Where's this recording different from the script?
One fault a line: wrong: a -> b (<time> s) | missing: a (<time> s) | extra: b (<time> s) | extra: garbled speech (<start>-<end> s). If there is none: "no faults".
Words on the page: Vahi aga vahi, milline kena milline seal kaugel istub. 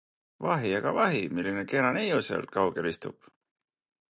wrong: milline -> neiu (2.0 s)